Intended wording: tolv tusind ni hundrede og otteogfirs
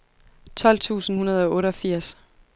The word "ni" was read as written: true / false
false